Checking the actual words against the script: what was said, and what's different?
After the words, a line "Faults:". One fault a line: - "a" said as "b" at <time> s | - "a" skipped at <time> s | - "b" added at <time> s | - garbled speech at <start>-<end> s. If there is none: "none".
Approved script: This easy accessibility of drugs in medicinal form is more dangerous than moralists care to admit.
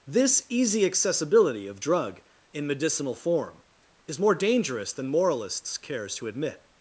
This easy accessibility of drug in medicinal form is more dangerous than moralists cares to admit.
Faults:
- "drugs" said as "drug" at 1.8 s
- "care" said as "cares" at 5.8 s